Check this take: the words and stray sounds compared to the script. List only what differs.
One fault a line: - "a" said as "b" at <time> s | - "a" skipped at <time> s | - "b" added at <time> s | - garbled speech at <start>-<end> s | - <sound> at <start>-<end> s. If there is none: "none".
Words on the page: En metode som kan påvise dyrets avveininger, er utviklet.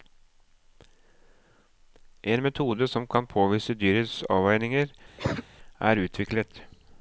- cough at 5.2-5.4 s